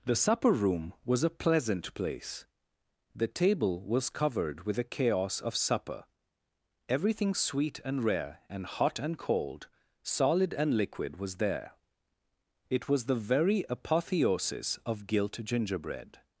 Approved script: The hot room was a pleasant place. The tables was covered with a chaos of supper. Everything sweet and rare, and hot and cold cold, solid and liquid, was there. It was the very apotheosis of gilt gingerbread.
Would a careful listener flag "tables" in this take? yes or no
yes